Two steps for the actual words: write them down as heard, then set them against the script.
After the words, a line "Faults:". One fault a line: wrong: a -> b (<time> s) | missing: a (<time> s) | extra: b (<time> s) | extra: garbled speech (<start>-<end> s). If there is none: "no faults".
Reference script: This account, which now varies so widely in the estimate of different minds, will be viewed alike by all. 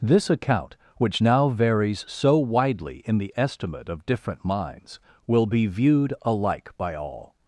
This account, which now varies so widely in the estimate of different minds, will be viewed alike by all.
Faults:
no faults